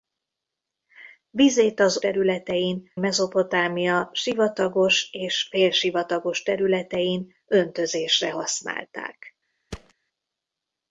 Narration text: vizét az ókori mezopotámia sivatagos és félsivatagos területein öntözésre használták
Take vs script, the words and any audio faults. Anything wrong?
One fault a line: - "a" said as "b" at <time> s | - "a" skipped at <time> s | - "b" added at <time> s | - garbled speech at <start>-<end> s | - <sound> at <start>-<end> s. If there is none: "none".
- "ókori" said as "területein" at 2.0 s
- thud at 9.7-9.9 s